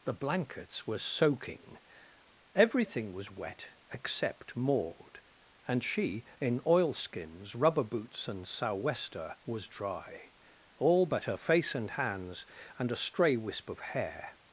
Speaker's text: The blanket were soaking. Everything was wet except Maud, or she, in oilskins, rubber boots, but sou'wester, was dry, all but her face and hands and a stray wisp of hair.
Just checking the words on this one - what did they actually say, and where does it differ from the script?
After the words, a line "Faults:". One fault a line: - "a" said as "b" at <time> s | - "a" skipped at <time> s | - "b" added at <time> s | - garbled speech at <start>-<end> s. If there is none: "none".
The blankets were soaking. Everything was wet except Maud, and she, in oilskins, rubber boots, and sou'wester, was dry, all but her face and hands and a stray wisp of hair.
Faults:
- "blanket" said as "blankets" at 0.1 s
- "or" said as "and" at 5.7 s
- "but" said as "and" at 8.3 s